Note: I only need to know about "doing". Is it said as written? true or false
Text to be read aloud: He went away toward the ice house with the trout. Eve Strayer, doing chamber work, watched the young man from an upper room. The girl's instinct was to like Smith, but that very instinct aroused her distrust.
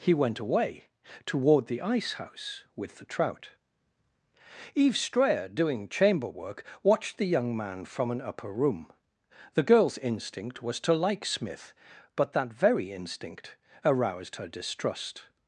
true